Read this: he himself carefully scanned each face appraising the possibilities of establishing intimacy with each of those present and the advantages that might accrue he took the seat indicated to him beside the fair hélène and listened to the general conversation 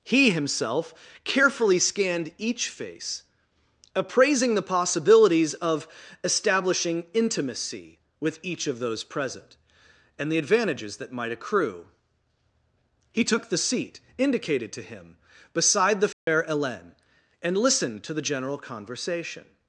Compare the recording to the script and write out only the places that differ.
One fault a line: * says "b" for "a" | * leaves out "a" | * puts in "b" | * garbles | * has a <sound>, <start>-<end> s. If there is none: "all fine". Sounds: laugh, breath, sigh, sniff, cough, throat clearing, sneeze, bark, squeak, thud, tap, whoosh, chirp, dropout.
* has a dropout, 16.1-16.3 s